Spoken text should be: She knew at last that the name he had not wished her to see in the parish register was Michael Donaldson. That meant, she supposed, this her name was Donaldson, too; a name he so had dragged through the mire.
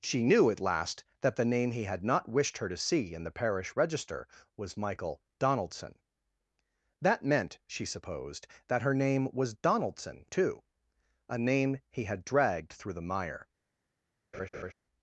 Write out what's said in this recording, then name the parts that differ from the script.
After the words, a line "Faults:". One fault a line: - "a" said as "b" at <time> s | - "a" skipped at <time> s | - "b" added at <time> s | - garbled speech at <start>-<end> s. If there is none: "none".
She knew at last that the name he had not wished her to see in the parish register was Michael Donaldson. That meant, she supposed, that her name was Donaldson, too; a name he had dragged through the mire.
Faults:
- "this" said as "that" at 8.7 s
- "so" skipped at 12.1 s